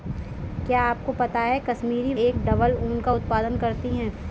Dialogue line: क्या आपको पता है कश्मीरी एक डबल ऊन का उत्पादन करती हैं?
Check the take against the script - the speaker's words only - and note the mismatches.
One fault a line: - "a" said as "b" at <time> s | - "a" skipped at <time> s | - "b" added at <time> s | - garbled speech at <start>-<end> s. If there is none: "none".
none